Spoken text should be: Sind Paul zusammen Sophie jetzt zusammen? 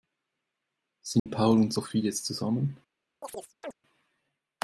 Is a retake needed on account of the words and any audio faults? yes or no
yes